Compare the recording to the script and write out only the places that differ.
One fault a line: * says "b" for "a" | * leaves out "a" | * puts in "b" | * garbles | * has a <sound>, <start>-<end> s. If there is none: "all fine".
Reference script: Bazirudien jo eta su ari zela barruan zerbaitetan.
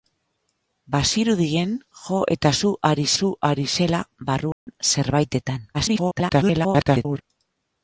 * puts in "su ari"
* has a dropout, 4.5-4.7 s
* garbles